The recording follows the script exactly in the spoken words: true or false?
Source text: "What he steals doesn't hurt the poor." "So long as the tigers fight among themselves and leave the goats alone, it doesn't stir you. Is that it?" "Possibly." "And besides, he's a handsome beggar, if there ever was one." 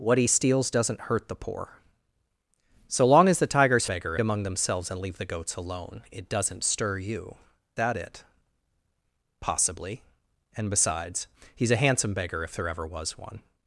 false